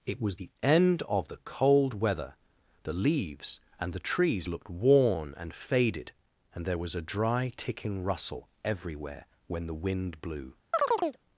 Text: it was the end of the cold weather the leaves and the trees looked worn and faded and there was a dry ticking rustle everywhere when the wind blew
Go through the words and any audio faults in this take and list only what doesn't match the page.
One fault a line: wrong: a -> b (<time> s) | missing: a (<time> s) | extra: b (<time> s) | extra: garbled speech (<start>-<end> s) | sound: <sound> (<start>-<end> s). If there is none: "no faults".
sound: chirp (10.7-11.2 s)